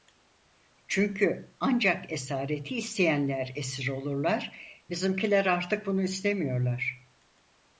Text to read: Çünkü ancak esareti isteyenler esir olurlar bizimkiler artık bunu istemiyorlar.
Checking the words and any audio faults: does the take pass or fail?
pass